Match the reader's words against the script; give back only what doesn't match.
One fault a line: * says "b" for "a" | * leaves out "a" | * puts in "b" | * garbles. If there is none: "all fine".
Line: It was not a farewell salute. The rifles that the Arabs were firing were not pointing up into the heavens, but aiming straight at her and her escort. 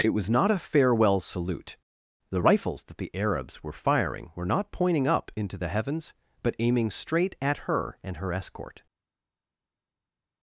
all fine